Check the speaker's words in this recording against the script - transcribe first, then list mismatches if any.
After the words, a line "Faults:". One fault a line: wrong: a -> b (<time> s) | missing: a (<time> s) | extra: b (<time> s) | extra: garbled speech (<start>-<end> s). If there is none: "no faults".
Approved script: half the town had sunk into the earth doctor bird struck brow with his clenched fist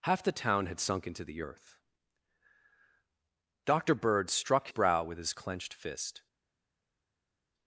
half the town had sunk into the earth doctor bird struck brow with his clenched fist
Faults:
no faults